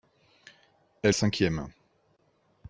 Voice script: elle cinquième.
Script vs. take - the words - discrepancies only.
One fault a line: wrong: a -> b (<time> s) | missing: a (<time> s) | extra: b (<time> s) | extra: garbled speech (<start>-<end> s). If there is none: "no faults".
no faults